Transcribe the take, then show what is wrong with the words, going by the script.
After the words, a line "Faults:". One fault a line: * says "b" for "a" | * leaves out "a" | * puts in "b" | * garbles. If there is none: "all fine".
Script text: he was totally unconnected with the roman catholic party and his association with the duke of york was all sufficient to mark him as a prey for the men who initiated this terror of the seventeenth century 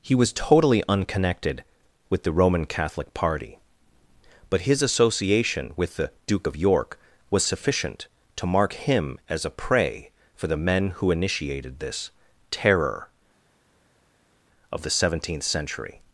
he was totally unconnected with the roman catholic party but his association with the duke of york was sufficient to mark him as a prey for the men who initiated this terror of the seventeenth century
Faults:
* says "but" for "and"
* leaves out "all"